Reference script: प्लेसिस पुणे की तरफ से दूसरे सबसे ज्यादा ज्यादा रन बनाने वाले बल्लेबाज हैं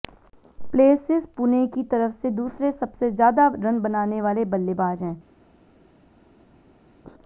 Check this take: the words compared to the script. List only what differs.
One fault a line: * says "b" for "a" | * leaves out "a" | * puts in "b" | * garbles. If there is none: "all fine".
* leaves out "ज्यादा"